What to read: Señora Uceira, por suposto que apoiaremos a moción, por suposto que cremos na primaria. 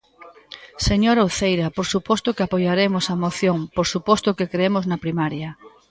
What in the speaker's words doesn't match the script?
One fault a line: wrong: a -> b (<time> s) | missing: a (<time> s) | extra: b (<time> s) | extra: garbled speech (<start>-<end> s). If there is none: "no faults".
no faults